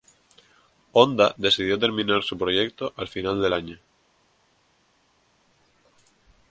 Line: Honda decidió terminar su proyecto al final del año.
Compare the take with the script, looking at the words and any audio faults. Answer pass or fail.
pass